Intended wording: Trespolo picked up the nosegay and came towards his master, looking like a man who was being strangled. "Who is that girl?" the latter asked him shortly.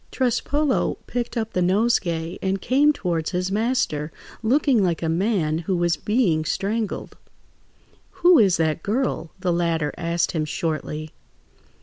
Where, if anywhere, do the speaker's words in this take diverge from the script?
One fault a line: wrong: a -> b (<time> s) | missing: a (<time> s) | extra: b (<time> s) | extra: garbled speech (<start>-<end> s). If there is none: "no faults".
no faults